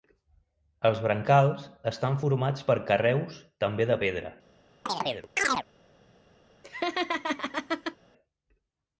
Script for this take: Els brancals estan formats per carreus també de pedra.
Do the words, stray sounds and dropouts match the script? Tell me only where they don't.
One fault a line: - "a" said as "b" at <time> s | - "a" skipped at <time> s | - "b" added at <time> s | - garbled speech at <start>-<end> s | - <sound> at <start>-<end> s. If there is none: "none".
- chirp at 4.9-5.7 s
- laugh at 6.6-8.0 s